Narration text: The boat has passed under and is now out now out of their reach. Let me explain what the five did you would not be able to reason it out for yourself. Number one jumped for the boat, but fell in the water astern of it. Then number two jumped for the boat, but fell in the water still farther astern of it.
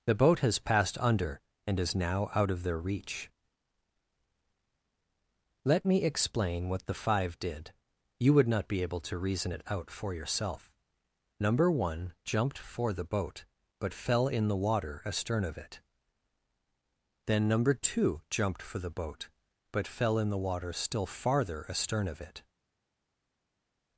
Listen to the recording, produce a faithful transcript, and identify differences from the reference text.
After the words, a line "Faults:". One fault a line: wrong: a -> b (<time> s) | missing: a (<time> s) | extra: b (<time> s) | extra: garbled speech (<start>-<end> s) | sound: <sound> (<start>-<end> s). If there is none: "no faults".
The boat has passed under and is now out of their reach. Let me explain what the five did you would not be able to reason it out for yourself. Number one jumped for the boat, but fell in the water astern of it. Then number two jumped for the boat, but fell in the water still farther astern of it.
Faults:
missing: now out (2.5 s)